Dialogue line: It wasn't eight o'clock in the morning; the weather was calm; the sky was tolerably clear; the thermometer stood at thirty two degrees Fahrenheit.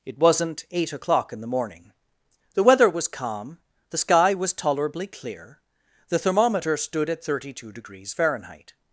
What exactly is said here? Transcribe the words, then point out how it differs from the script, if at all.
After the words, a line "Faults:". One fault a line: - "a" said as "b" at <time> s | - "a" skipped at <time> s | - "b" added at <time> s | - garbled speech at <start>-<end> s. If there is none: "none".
It wasn't eight o'clock in the morning; the weather was calm; the sky was tolerably clear; the thermometer stood at thirty two degrees Fahrenheit.
Faults:
none